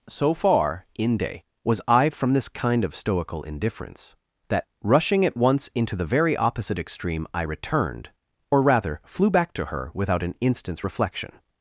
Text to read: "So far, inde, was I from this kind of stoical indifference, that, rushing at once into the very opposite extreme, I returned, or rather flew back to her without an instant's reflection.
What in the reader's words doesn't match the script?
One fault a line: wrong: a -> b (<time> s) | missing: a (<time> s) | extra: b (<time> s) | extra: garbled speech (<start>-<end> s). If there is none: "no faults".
no faults